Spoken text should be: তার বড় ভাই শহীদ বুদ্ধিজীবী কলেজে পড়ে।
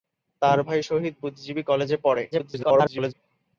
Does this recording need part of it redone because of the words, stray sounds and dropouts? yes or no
yes